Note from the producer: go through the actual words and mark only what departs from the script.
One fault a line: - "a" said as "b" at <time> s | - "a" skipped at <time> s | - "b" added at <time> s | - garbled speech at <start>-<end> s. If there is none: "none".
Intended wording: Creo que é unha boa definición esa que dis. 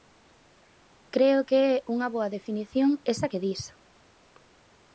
none